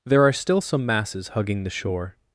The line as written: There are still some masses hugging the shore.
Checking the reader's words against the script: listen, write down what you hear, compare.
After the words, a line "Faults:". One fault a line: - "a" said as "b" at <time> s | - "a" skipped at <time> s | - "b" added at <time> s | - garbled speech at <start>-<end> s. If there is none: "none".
There are still some masses hugging the shore.
Faults:
none